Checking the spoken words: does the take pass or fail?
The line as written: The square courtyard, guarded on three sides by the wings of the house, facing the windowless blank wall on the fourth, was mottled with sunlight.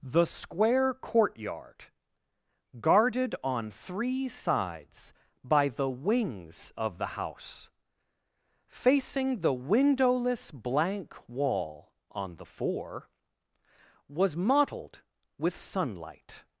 fail